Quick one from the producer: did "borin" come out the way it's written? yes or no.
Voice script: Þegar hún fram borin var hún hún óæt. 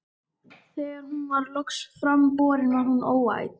yes